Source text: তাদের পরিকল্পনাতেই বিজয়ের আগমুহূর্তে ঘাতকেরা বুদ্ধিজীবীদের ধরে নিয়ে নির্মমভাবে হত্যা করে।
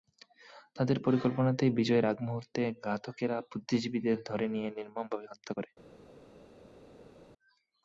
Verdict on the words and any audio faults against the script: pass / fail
pass